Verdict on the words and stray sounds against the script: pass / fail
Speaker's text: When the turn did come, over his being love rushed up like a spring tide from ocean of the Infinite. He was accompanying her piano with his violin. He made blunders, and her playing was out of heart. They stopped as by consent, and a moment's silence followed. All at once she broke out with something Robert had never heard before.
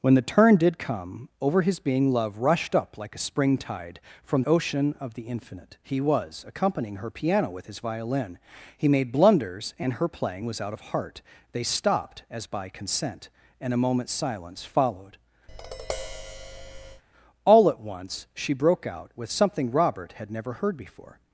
fail